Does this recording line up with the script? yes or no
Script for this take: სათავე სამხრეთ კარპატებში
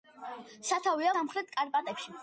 yes